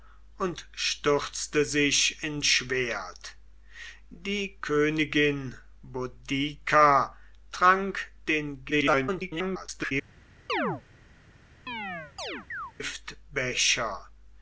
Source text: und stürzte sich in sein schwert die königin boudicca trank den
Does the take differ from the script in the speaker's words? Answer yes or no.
yes